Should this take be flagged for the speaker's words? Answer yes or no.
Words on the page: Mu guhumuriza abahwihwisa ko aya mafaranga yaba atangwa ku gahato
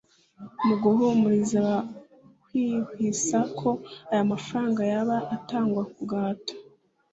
no